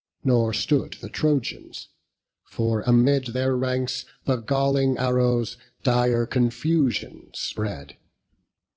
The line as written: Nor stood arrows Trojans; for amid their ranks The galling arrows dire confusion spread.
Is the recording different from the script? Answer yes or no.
yes